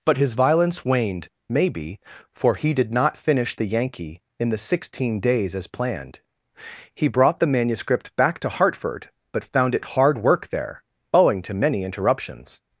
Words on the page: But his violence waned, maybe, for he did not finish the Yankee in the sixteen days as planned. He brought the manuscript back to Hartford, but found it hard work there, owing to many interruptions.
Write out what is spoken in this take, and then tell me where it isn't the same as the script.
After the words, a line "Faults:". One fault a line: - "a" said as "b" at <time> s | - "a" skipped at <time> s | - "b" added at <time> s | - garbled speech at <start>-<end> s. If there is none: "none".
But his violence waned, maybe, for he did not finish the Yankee in the sixteen days as planned. He brought the manuscript back to Hartford, but found it hard work there, owing to many interruptions.
Faults:
none